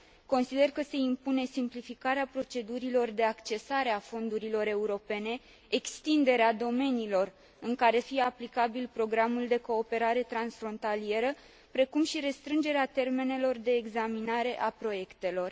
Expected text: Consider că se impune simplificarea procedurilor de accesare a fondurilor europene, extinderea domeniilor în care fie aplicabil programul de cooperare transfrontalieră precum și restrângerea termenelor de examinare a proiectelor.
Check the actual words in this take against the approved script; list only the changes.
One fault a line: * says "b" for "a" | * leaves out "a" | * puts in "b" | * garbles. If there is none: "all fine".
all fine